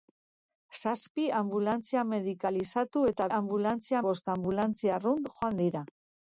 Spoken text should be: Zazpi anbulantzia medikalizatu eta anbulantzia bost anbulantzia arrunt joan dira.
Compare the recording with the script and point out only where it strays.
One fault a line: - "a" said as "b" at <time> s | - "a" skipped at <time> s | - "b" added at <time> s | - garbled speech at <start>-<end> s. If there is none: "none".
none